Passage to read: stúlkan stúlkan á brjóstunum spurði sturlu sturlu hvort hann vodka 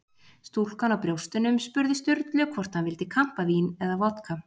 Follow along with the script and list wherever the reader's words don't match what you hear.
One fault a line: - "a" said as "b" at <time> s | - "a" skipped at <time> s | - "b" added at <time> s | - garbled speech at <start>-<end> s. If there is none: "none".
- "stúlkan" skipped at 0.9 s
- "sturlu" skipped at 2.5 s
- "vildi kampavín eða" added at 2.9 s